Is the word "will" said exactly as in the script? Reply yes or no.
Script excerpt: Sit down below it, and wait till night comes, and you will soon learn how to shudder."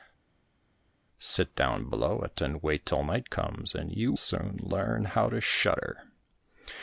no